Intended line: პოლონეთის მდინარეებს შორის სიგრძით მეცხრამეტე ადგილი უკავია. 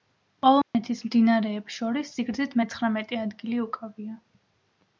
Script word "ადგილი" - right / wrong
right